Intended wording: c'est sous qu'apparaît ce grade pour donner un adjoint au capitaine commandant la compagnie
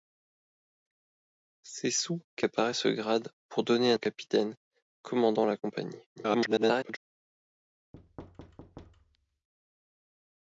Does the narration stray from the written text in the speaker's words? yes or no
yes